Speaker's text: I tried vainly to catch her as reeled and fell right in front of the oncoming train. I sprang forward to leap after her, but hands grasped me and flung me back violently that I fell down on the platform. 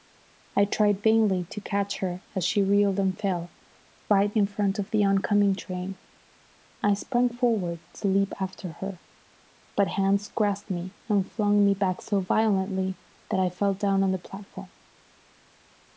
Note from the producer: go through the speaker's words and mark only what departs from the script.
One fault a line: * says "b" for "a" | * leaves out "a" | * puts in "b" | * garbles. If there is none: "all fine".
* puts in "she"
* puts in "so"